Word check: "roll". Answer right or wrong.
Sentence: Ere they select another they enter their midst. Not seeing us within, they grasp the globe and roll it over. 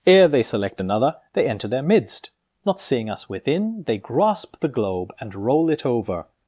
right